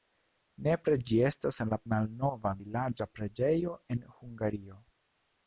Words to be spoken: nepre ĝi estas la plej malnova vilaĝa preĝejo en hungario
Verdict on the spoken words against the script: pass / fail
fail